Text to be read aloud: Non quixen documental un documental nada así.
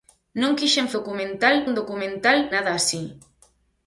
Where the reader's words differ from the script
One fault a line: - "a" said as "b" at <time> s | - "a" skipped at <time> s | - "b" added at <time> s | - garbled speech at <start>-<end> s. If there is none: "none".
none